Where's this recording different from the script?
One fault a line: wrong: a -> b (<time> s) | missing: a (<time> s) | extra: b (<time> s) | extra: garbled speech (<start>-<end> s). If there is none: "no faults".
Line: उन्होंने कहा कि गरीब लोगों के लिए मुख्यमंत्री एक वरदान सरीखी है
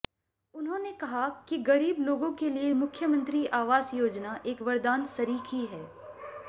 extra: आवास योजना (3.6 s)